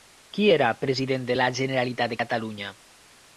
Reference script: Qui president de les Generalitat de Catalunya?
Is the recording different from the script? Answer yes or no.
yes